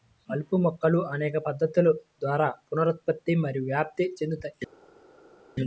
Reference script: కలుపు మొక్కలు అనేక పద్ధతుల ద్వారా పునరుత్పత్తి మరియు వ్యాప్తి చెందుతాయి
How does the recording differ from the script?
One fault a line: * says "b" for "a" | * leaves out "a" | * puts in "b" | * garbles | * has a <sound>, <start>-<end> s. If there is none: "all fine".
all fine